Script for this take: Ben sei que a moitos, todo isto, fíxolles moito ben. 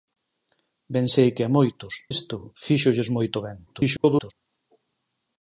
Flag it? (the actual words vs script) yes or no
yes